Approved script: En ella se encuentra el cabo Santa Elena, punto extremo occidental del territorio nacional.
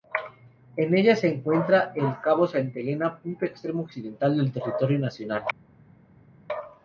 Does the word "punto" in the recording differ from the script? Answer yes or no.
no